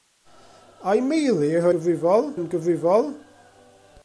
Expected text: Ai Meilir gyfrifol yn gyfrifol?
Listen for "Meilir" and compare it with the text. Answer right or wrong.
right